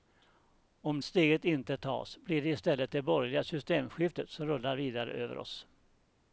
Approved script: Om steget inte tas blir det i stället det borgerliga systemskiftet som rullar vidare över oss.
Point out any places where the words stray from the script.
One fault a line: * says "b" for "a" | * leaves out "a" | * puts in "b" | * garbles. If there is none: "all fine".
all fine